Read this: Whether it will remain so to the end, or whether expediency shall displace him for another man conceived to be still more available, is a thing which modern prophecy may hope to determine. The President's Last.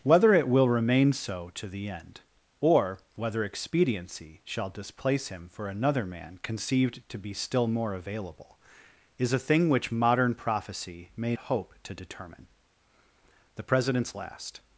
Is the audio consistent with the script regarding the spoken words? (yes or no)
yes